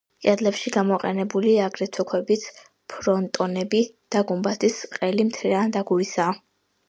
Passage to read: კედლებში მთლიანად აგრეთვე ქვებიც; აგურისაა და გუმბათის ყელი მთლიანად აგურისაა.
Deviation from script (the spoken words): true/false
true